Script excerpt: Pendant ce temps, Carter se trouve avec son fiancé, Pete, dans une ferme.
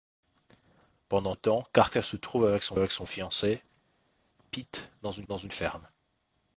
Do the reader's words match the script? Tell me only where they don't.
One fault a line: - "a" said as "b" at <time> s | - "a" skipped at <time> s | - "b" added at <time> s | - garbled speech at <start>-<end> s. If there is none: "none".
- "ce" skipped at 1.4 s
- "avec son" added at 2.7 s
- "dans une" added at 5.3 s